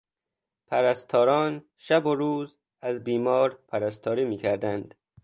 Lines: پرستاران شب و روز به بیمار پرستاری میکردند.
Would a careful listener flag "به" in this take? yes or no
yes